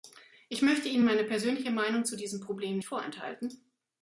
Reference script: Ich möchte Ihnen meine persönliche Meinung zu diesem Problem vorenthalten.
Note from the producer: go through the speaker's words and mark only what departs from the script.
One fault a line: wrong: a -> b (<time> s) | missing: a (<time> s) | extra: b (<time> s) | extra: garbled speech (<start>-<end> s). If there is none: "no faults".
no faults